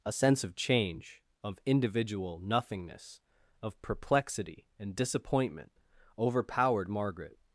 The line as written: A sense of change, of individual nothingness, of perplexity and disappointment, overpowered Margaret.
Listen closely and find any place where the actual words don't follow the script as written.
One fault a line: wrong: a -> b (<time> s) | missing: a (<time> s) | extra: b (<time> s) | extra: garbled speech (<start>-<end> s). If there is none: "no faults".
no faults